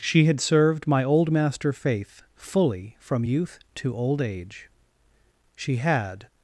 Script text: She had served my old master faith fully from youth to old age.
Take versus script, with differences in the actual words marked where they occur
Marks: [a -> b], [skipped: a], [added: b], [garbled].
She had served my old master faith fully from youth to old age. [added: She had]